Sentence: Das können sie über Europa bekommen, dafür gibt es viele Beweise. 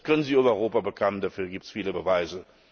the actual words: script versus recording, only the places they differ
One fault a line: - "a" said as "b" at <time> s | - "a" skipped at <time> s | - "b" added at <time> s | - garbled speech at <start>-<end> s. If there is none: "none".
none